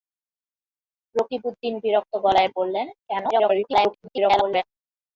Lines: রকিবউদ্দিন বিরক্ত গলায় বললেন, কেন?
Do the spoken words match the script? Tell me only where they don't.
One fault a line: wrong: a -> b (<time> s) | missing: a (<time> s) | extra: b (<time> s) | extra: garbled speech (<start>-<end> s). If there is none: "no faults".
extra: garbled speech (3.3-4.6 s)